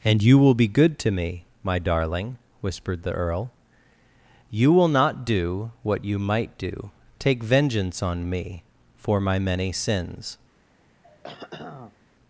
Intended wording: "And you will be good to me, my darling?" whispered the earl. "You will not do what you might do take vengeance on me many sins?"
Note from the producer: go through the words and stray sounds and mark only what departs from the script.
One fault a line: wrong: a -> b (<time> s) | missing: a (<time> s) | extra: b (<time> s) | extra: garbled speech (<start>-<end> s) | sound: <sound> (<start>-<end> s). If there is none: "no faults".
extra: for my (9.0 s)
sound: throat clearing (11.0-12.0 s)